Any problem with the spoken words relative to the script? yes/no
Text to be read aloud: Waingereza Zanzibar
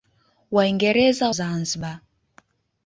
no